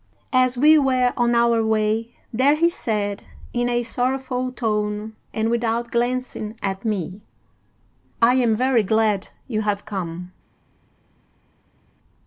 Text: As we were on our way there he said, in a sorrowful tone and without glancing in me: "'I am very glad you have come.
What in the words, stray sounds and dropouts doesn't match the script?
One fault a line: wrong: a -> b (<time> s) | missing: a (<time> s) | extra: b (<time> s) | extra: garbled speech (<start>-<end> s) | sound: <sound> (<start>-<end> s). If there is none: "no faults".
wrong: in -> at (6.6 s)